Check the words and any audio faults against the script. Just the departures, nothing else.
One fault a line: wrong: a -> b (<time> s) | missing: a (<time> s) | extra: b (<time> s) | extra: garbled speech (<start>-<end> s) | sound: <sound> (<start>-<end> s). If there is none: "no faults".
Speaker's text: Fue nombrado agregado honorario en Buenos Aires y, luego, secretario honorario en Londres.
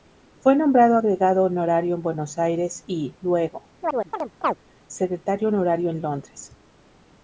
sound: chirp (3.8-4.6 s)